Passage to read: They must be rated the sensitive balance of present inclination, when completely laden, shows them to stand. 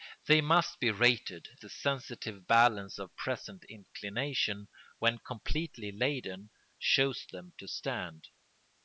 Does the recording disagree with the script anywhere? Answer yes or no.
no